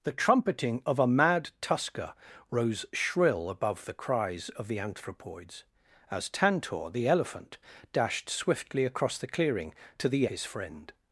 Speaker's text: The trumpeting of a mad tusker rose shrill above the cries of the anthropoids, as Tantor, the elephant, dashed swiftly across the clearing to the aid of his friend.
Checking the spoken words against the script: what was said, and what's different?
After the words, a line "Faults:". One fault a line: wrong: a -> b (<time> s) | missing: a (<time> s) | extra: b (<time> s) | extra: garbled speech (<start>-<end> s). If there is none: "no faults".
The trumpeting of a mad tusker rose shrill above the cries of the anthropoids, as Tantor, the elephant, dashed swiftly across the clearing to the his friend.
Faults:
missing: aid of (10.2 s)